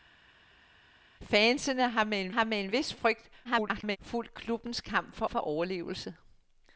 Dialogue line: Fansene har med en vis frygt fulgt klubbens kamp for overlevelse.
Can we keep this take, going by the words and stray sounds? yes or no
no